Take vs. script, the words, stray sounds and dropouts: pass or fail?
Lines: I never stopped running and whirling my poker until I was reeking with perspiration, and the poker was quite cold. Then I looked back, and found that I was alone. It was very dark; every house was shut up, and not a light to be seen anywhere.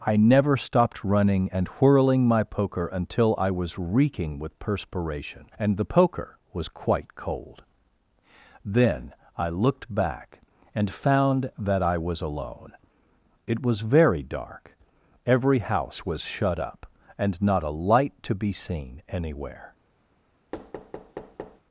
fail